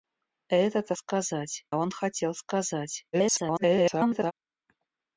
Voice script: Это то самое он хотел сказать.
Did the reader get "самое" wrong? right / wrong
wrong